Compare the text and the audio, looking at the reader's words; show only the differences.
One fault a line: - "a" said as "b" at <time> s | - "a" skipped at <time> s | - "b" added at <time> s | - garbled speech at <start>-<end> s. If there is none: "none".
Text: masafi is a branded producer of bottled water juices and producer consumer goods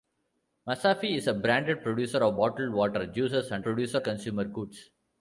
none